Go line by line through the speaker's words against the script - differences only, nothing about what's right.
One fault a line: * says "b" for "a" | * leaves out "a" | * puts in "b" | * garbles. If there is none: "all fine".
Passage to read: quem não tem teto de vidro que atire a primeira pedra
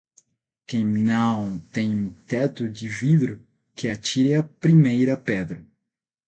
all fine